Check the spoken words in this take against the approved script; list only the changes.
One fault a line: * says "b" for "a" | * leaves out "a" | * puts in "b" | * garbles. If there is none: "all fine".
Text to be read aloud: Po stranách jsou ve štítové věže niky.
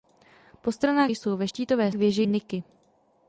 all fine